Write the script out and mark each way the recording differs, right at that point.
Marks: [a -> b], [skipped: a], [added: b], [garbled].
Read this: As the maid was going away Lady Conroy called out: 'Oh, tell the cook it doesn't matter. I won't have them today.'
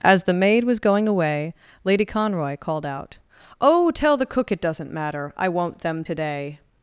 As the maid was going away Lady Conroy called out: 'Oh, tell the cook it doesn't matter. I won't [skipped: have] them today.'